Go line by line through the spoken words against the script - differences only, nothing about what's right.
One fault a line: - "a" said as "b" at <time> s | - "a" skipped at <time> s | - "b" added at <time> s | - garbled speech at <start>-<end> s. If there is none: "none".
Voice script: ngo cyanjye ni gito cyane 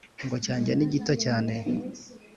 none